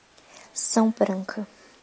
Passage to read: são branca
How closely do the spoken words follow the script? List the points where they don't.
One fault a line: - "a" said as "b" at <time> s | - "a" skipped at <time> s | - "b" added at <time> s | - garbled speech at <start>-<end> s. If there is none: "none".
none